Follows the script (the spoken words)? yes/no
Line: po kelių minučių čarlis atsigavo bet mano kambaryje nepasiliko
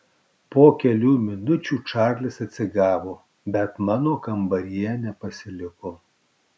yes